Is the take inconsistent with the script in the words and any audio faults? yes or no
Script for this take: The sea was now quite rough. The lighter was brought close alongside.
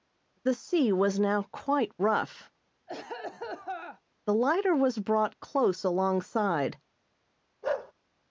yes